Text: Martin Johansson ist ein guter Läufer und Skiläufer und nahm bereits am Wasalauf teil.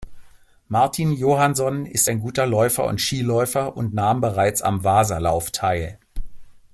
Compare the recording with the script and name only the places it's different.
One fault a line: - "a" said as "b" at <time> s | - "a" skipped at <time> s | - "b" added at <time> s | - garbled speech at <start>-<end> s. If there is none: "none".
none